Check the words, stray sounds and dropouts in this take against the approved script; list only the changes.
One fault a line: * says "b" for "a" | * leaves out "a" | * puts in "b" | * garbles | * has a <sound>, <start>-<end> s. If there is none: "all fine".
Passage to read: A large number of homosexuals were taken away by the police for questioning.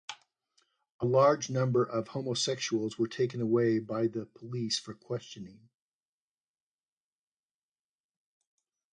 all fine